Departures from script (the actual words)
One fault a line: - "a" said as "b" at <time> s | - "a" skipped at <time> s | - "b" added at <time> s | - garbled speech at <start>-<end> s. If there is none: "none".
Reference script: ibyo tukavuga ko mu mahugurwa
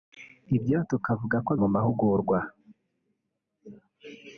none